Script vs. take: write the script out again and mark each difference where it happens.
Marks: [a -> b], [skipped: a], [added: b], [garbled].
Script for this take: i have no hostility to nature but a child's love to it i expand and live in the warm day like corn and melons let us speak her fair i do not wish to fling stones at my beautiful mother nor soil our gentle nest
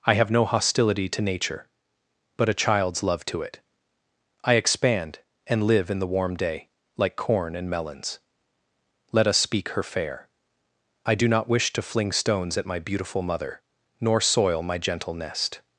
i have no hostility to nature but a child's love to it i expand and live in the warm day like corn and melons let us speak her fair i do not wish to fling stones at my beautiful mother nor soil [our -> my] gentle nest